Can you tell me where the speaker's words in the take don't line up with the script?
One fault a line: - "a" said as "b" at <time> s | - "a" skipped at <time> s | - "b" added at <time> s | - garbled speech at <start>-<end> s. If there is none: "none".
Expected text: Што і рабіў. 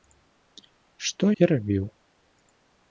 none